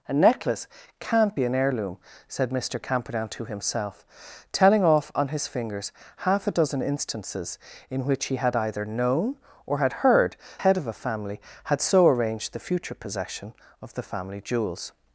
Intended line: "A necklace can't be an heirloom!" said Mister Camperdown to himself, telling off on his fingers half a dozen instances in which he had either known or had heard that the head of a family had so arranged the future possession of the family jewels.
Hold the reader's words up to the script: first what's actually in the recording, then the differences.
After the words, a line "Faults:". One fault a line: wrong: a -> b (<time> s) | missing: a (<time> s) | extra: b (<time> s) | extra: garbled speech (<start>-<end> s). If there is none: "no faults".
"A necklace can't be an heirloom!" said Mister Camperdown to himself, telling off on his fingers half a dozen instances in which he had either known or had heard head of a family had so arranged the future possession of the family jewels.
Faults:
missing: that the (10.4 s)